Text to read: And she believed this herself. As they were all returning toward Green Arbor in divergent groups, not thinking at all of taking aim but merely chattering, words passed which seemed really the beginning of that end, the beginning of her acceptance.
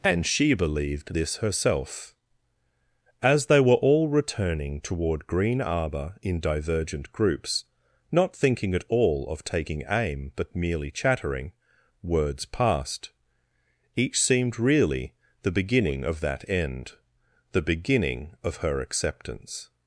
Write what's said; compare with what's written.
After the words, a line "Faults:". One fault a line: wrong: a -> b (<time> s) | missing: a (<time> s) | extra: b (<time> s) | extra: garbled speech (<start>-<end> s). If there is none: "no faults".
And she believed this herself. As they were all returning toward Green Arbor in divergent groups, not thinking at all of taking aim but merely chattering, words passed each seemed really the beginning of that end, the beginning of her acceptance.
Faults:
wrong: which -> each (14.0 s)